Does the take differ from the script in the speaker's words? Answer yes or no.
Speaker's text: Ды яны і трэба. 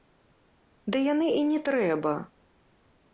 yes